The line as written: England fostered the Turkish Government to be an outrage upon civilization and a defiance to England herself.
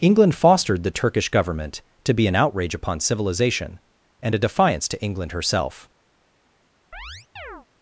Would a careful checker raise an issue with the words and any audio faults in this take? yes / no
yes